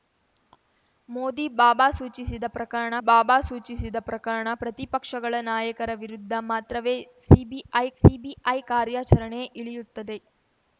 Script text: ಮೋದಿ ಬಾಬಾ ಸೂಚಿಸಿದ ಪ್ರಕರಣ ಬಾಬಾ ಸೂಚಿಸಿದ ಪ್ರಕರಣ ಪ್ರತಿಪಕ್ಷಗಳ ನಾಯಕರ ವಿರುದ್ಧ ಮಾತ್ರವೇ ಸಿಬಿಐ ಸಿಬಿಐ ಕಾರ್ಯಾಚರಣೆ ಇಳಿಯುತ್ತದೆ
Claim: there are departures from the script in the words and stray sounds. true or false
false